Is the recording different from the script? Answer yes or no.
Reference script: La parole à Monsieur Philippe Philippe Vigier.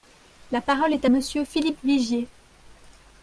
yes